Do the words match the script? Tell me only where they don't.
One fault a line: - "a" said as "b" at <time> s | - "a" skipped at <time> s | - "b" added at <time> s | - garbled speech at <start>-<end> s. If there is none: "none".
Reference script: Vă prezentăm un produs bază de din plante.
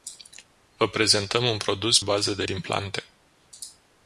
none